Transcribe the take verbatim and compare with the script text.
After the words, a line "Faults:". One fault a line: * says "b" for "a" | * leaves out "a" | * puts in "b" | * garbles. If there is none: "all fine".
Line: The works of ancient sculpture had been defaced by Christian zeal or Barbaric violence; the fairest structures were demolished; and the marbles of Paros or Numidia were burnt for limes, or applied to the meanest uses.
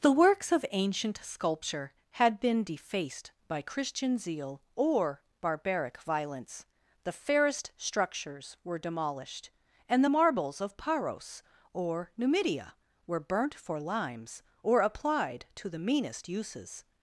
The works of ancient sculpture had been defaced by Christian zeal or Barbaric violence; the fairest structures were demolished; and the marbles of Paros or Numidia were burnt for limes, or applied to the meanest uses.
Faults:
all fine